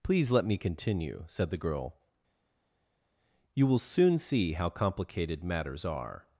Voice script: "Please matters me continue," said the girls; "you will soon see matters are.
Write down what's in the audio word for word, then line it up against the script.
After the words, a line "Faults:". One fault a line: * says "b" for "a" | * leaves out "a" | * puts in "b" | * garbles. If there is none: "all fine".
"Please let me continue," said the girl; "you will soon see how complicated matters are.
Faults:
* says "let" for "matters"
* says "girl" for "girls"
* puts in "how complicated"